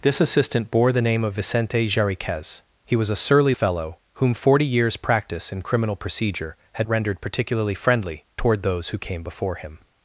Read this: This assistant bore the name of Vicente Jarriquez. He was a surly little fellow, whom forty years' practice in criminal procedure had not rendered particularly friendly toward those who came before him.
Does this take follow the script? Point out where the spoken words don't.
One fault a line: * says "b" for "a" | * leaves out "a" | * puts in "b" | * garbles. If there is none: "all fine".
* leaves out "little"
* leaves out "not"